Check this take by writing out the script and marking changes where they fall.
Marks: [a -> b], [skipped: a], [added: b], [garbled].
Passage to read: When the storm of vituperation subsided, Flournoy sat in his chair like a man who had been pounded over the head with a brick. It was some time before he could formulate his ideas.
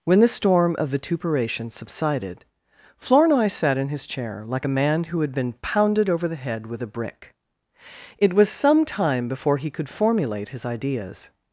When the storm of vituperation subsided, Flournoy sat in his chair like a man who had been pounded over the head with a brick. It was some time before he could formulate his ideas.